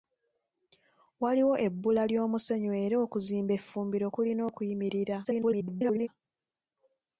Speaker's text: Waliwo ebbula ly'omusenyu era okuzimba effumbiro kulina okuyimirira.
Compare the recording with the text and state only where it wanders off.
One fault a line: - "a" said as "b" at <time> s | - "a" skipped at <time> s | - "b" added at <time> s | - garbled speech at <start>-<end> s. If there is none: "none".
- garbled speech at 5.2-6.1 s